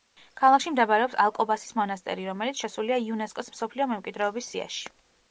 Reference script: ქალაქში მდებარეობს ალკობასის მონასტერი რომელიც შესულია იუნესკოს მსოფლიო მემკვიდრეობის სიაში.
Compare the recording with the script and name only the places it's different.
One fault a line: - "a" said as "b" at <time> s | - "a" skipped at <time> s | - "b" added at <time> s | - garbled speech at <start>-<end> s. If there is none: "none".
none